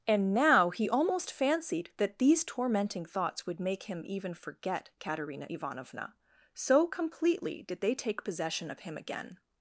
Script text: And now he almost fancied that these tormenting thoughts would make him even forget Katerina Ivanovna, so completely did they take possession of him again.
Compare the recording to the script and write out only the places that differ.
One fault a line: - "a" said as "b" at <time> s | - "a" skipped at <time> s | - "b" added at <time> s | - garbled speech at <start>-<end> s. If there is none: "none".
none